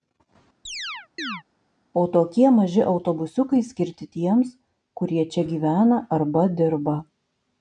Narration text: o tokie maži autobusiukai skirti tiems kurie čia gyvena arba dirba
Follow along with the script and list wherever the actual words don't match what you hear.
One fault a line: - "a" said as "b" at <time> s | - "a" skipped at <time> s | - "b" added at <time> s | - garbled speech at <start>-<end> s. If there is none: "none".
none